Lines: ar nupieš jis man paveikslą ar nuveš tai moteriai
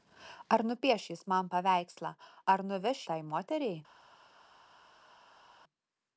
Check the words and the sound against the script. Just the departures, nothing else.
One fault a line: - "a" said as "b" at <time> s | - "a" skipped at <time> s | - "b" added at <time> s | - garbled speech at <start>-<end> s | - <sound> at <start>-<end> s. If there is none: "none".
none